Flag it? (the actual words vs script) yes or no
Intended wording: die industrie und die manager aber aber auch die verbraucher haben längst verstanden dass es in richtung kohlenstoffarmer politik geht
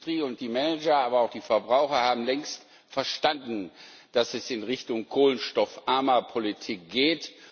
yes